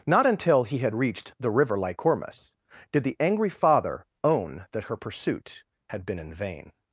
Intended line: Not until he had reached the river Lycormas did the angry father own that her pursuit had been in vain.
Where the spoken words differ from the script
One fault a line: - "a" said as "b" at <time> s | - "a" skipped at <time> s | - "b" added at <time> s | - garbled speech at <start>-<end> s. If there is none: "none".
none